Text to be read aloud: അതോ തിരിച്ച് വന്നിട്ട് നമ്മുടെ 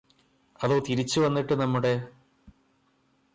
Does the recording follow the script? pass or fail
pass